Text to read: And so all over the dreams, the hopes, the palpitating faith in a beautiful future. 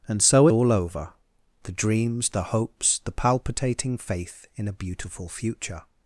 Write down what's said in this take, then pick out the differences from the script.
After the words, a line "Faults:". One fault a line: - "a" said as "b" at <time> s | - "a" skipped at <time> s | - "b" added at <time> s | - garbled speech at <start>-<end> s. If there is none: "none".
And so all over the dreams, the hopes, the palpitating faith in a beautiful future.
Faults:
none